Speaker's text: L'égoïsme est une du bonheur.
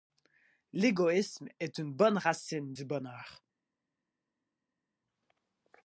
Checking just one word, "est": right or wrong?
right